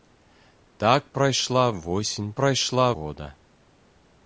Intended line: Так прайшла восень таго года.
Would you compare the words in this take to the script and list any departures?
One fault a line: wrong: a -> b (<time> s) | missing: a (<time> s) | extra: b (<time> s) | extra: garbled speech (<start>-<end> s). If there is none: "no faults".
wrong: таго -> прайшла (2.3 s)